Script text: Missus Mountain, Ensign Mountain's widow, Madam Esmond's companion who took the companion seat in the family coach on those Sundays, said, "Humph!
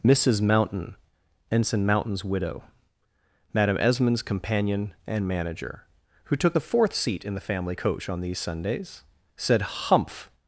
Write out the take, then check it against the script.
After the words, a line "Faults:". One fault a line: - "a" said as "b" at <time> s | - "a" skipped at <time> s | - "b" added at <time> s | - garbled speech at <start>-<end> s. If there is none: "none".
Missus Mountain, Ensign Mountain's widow, Madam Esmond's companion and manager, who took the fourth seat in the family coach on these Sundays, said, "Humph!
Faults:
- "and manager" added at 5.0 s
- "companion" said as "fourth" at 6.6 s
- "those" said as "these" at 8.2 s